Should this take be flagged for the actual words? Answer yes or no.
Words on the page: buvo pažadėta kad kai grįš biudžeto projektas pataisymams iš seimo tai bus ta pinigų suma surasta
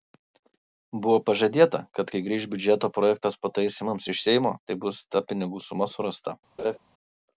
no